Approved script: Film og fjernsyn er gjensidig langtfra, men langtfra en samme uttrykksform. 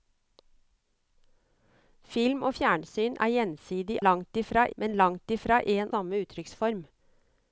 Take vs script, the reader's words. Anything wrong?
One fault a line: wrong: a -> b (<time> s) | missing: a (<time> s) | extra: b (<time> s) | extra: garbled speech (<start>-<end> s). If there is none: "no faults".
no faults